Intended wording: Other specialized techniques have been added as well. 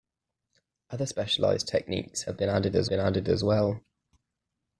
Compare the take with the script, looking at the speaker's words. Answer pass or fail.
fail